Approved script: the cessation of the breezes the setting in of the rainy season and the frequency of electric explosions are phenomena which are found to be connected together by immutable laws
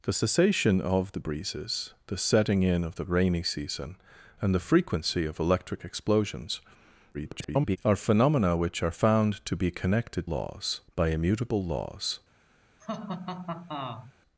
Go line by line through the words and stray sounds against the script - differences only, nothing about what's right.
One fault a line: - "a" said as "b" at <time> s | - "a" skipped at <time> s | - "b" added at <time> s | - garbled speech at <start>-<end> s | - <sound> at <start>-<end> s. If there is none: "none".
- garbled speech at 7.1-7.8 s
- "together" said as "laws" at 10.2 s
- laugh at 12.8-14.1 s